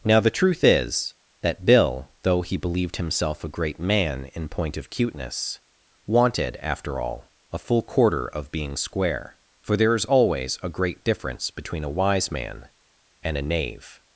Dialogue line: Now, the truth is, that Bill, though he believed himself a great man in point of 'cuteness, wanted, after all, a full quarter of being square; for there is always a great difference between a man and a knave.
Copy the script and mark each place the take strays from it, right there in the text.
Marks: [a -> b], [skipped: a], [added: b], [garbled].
Now, the truth is, that Bill, though he believed himself a great man in point of 'cuteness, wanted, after all, a full quarter of being square; for there is always a great difference between a [added: wise] man and a knave.